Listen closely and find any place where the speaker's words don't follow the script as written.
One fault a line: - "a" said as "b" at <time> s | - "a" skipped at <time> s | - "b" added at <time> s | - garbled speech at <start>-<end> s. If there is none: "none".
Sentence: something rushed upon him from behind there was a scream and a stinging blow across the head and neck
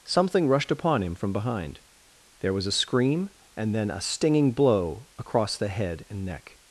- "then" added at 3.8 s